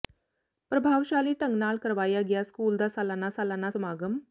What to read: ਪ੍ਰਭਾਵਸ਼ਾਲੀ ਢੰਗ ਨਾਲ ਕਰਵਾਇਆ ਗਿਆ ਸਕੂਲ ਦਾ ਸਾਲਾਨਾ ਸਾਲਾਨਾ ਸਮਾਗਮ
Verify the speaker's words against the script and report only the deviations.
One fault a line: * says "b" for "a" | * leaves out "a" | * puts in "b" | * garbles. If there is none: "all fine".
all fine